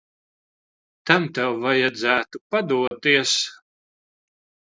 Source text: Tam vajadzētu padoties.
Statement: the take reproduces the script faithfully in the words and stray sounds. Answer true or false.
false